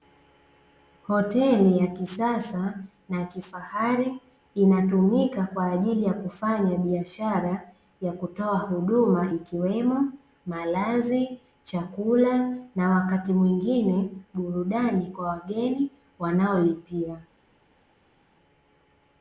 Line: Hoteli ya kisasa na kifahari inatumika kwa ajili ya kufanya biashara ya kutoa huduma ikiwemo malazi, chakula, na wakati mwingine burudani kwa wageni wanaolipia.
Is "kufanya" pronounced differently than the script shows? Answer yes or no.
no